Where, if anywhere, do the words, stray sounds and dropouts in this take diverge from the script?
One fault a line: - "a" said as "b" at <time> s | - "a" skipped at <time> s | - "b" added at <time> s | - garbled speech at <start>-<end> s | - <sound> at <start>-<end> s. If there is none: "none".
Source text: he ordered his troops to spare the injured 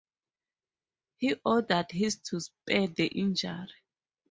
- "troops" skipped at 2.2 s